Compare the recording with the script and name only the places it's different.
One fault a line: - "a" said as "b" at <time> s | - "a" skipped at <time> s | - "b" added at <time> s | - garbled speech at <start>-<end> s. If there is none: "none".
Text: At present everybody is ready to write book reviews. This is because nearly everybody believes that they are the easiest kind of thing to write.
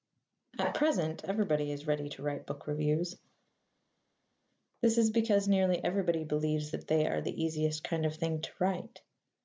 none